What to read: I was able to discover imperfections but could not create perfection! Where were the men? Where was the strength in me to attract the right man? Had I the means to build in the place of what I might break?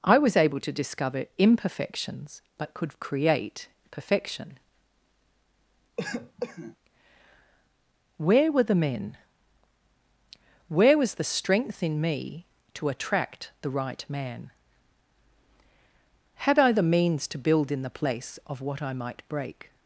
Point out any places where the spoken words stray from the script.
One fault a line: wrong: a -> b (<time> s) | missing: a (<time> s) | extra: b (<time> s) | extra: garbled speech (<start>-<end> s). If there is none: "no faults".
missing: not (3.0 s)